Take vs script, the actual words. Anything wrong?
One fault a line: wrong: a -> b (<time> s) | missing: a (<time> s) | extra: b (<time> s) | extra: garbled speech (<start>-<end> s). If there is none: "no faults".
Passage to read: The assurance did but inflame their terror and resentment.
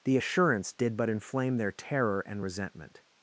no faults